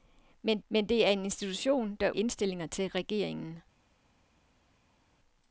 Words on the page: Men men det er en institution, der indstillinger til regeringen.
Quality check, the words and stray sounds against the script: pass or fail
pass